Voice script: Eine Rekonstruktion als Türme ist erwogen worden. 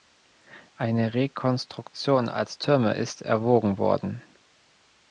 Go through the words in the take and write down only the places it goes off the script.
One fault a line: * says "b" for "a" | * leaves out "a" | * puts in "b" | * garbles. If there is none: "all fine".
all fine